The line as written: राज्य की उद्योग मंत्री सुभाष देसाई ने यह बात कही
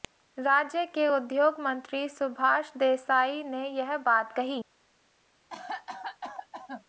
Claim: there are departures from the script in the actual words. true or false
true